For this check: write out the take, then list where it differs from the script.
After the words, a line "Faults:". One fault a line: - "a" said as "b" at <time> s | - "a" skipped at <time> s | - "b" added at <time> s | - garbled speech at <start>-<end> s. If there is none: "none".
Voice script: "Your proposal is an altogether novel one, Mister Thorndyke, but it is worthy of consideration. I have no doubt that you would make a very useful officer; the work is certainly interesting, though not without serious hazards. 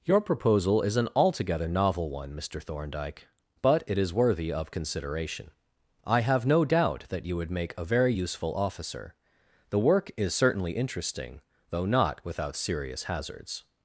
"Your proposal is an altogether novel one, Mister Thorndyke, but it is worthy of consideration. I have no doubt that you would make a very useful officer; the work is certainly interesting, though not without serious hazards.
Faults:
none